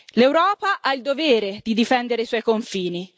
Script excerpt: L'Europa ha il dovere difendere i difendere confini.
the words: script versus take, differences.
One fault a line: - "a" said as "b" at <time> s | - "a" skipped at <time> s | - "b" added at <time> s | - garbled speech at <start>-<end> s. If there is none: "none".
- "di" added at 1.6 s
- "difendere" said as "suoi" at 2.2 s